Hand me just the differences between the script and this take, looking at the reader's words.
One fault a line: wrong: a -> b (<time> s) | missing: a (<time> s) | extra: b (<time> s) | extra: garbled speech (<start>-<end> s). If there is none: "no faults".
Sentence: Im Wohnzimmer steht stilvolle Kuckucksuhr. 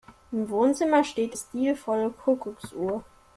no faults